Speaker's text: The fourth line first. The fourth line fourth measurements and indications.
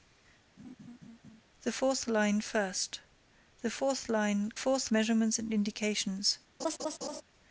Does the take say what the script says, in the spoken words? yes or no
yes